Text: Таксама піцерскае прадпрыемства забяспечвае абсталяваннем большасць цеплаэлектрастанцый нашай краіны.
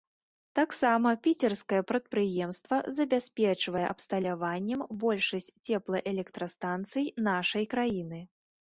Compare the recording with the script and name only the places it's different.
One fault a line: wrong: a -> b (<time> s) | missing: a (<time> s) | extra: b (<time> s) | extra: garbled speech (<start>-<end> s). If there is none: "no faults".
no faults